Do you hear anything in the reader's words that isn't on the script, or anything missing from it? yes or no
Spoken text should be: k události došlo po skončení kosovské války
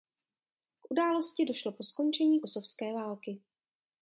no